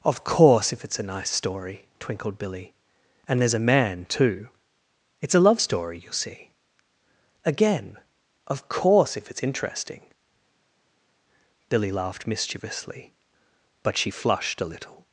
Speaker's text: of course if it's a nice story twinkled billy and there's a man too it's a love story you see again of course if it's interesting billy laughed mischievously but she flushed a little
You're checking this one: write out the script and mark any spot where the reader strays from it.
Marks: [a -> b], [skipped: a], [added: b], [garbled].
of course if it's a nice story twinkled billy and there's a man too it's a love story you see again of course if it's interesting billy laughed mischievously but she flushed a little